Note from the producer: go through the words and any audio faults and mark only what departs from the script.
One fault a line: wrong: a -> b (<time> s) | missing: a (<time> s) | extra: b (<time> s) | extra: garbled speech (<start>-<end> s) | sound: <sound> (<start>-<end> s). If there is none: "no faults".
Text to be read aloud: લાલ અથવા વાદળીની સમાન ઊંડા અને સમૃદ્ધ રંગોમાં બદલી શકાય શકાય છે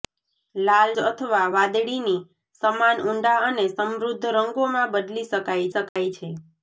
sound: dropout (5.9-6.0 s)